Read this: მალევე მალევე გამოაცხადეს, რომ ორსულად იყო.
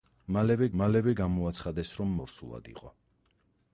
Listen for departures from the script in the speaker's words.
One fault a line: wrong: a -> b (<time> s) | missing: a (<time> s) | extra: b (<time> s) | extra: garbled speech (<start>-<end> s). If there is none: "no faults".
no faults